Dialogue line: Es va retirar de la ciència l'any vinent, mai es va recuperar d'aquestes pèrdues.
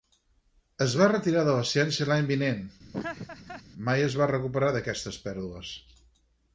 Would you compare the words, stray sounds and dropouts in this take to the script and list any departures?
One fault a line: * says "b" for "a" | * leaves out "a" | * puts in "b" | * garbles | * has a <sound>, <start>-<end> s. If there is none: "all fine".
* has a laugh, 2.9-3.6 s